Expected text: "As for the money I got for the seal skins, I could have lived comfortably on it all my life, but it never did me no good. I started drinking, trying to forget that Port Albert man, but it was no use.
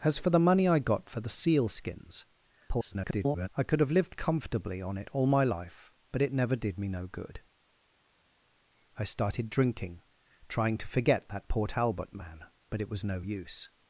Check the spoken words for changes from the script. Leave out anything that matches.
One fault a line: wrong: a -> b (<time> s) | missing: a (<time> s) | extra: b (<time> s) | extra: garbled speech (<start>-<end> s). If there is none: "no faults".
extra: garbled speech (2.7-3.5 s)